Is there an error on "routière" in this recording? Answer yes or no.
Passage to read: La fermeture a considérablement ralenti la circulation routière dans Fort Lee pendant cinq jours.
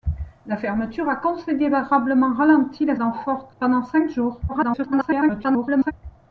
yes